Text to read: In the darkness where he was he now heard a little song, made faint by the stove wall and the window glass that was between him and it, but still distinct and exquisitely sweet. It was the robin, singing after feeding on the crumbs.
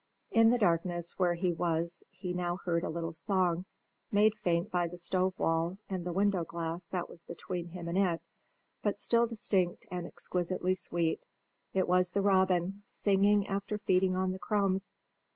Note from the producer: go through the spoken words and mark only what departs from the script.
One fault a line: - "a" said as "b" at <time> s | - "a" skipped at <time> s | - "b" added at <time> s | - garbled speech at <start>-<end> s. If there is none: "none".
none